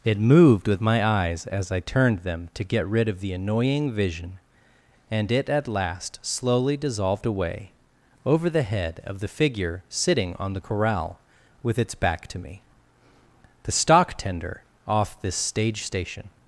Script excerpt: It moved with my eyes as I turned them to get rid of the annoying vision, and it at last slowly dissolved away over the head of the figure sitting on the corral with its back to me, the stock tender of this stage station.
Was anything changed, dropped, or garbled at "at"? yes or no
no